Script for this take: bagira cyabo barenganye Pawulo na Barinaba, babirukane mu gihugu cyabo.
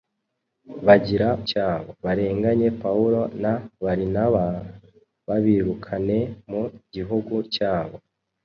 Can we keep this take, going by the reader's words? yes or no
yes